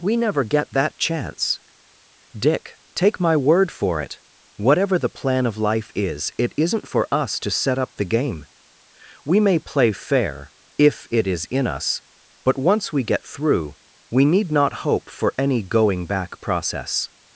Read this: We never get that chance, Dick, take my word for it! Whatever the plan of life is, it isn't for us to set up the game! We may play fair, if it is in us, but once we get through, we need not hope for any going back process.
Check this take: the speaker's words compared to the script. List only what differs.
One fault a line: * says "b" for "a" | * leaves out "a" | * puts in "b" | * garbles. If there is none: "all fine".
all fine